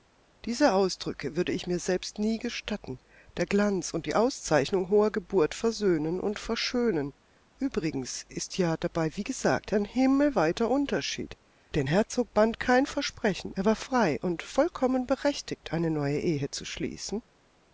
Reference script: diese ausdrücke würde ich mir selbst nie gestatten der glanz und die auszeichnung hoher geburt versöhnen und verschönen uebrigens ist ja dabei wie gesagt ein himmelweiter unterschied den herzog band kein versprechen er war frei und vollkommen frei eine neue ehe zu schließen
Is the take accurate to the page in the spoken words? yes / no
no